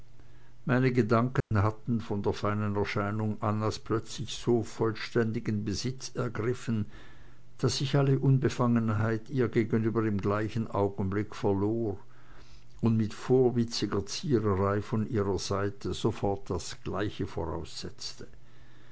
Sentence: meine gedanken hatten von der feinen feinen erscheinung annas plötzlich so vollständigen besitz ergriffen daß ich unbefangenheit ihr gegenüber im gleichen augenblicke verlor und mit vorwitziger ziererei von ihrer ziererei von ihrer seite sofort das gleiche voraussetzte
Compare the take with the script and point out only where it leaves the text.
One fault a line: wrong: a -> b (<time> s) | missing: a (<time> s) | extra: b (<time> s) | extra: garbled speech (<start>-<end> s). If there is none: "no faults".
missing: feinen (2.8 s)
extra: alle (8.0 s)
missing: ziererei von ihrer (15.4 s)